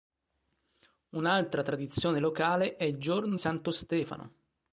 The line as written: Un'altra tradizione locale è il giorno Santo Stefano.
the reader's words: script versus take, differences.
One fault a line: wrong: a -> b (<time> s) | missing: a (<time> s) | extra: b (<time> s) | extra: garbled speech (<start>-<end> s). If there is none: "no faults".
no faults